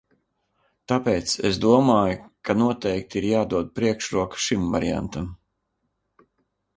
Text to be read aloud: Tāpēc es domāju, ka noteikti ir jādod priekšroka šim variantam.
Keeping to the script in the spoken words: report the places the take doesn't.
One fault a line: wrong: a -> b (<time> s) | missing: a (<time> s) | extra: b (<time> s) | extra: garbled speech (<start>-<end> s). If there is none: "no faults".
no faults